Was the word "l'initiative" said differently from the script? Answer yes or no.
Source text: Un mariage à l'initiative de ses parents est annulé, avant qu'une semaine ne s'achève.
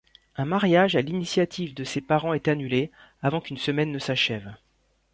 no